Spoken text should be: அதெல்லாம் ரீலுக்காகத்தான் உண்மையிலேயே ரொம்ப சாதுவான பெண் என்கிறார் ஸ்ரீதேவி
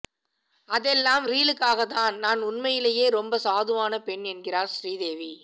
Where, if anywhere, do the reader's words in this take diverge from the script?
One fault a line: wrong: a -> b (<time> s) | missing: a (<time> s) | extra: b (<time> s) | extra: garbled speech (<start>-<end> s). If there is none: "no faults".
extra: நான் (2.2 s)